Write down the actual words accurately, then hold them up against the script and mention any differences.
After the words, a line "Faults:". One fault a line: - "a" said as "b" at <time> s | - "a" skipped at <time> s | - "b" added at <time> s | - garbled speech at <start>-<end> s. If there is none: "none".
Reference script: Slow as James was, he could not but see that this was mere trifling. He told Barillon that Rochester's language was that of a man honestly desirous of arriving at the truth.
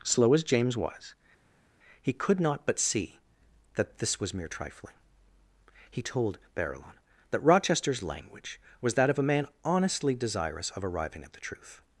Slow as James was, he could not but see that this was mere trifling. He told Barillon that Rochester's language was that of a man honestly desirous of arriving at the truth.
Faults:
none